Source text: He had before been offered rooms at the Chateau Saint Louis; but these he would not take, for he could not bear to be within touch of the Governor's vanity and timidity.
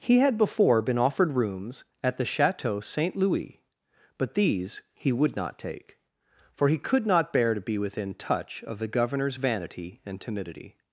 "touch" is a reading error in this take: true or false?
false